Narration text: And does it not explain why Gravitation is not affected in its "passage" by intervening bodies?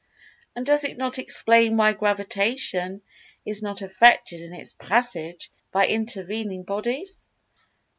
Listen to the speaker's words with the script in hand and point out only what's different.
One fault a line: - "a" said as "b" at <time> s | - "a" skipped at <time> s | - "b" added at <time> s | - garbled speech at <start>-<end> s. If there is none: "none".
none